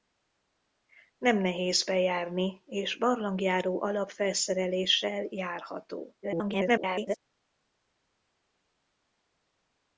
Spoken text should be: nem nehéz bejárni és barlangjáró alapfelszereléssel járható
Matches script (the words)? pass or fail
fail